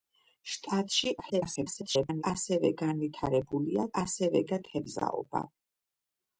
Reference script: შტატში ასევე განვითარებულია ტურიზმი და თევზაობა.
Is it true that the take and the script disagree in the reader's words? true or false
true